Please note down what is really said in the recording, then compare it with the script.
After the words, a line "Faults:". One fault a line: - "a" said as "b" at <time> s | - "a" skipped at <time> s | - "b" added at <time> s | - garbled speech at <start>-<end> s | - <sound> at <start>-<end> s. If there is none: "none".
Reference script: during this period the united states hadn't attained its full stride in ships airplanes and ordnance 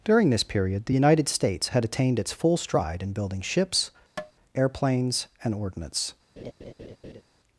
during this period the united states had attained its full stride in building ships airplanes and ordnance
Faults:
- "hadn't" said as "had" at 1.7 s
- "building" added at 3.1 s
- tap at 4.2-4.3 s
- laugh at 6.4-7.2 s